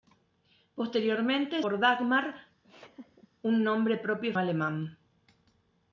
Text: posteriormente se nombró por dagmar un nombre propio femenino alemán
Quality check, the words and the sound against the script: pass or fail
fail